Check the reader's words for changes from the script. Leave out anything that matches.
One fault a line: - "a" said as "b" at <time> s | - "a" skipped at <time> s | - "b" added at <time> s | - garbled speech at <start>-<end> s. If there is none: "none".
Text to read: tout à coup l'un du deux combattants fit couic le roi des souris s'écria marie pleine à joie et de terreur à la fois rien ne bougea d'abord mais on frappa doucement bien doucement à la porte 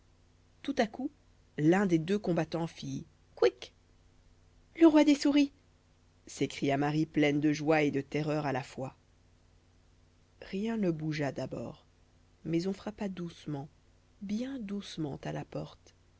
- "du" said as "des" at 1.9 s
- "à" said as "de" at 7.4 s